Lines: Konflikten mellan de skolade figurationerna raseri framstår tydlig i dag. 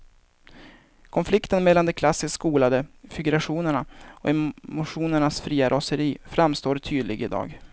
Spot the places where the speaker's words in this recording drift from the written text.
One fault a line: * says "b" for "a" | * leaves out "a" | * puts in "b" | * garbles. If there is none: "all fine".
* puts in "klassiskt"
* puts in "och emotionernas fria"